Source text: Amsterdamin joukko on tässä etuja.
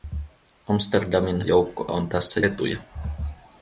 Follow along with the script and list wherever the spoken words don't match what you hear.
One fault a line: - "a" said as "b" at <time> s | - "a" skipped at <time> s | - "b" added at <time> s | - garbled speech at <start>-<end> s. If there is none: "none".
none